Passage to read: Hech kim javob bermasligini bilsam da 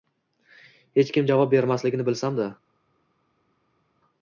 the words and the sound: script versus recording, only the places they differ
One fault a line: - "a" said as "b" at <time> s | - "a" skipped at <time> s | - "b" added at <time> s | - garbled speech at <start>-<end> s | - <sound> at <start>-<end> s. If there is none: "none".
none